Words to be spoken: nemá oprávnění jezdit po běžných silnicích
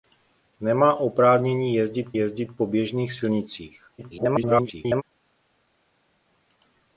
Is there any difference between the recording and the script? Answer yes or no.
yes